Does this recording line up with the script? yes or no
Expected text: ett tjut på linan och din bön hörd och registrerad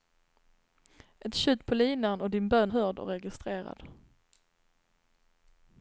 yes